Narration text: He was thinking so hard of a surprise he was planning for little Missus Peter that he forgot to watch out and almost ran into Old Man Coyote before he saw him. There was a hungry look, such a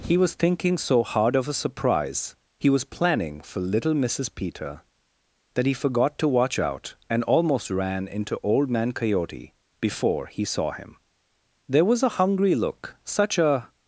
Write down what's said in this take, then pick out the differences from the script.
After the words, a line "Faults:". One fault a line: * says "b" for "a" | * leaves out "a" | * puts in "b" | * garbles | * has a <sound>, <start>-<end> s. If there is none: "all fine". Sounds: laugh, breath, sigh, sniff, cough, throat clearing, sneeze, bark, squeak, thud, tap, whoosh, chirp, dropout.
He was thinking so hard of a surprise he was planning for little Missus Peter that he forgot to watch out and almost ran into Old Man Coyote before he saw him. There was a hungry look, such a
Faults:
all fine